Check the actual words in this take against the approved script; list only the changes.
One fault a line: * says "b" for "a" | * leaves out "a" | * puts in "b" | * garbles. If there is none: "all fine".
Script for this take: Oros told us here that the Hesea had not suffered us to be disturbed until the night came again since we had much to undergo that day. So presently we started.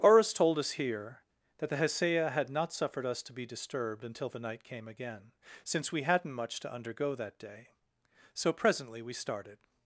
* says "hadn't" for "had"